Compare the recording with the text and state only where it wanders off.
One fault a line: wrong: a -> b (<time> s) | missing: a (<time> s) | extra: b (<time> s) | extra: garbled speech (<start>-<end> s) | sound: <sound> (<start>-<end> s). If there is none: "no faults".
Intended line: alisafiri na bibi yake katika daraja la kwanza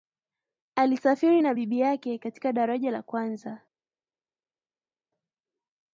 no faults